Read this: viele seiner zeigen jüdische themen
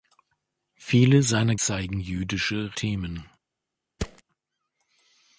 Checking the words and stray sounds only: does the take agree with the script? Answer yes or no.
no